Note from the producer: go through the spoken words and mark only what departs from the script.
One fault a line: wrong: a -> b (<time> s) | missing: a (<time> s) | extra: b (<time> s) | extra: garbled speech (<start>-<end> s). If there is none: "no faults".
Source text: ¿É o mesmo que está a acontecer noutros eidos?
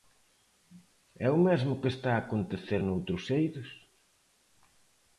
no faults